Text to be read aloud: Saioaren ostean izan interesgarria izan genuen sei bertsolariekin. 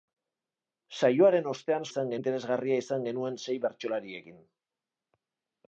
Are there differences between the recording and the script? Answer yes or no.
no